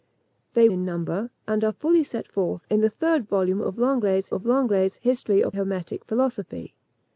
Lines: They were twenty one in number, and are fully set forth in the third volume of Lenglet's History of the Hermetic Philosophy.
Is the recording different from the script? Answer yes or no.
yes